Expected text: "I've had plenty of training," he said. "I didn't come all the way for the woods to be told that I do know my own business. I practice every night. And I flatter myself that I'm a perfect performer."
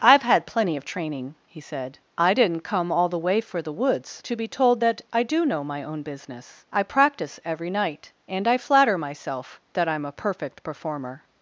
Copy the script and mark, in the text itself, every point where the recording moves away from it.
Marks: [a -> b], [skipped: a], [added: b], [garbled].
"I've had plenty of training," he said. "I didn't come all the way for the woods to be told that I do know my own business. I practice every night. And I flatter myself that I'm a perfect performer."